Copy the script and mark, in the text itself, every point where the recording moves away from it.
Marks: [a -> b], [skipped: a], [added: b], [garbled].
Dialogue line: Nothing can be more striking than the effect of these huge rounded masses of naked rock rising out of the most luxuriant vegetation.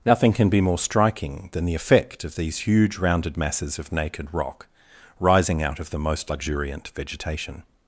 Nothing can be more striking than the effect of these huge rounded masses of naked rock rising out of the most luxuriant vegetation.